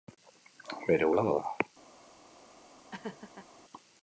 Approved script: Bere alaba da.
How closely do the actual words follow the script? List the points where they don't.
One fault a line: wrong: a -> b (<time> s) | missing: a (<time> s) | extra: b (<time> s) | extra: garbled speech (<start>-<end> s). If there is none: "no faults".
no faults